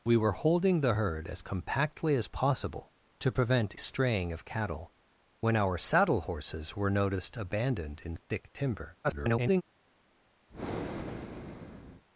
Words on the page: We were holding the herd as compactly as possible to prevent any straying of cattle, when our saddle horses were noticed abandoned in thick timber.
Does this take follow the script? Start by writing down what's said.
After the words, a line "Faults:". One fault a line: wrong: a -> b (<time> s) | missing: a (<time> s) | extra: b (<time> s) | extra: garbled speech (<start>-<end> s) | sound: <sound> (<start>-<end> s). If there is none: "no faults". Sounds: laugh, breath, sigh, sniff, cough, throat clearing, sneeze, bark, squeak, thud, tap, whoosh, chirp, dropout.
We were holding the herd as compactly as possible to prevent straying of cattle, when our saddle horses were noticed abandoned in thick timber. [garbled]
Faults:
missing: any (3.8 s)
extra: garbled speech (9.0-9.6 s)
sound: breath (10.5-12.0 s)